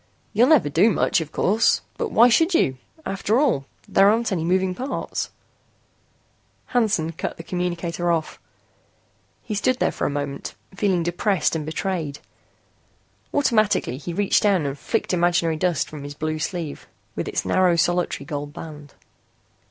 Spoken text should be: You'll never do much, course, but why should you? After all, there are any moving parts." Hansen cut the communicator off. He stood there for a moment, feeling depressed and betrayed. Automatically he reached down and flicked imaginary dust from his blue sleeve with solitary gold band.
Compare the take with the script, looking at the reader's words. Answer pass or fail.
fail